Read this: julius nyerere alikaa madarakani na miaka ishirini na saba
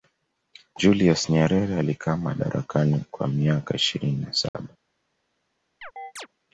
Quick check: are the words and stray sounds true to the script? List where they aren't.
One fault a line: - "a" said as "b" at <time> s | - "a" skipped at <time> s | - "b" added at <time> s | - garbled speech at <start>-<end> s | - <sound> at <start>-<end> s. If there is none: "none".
- "na" said as "kwa" at 3.1 s
- dropout at 4.5-4.5 s
- chirp at 5.8-6.3 s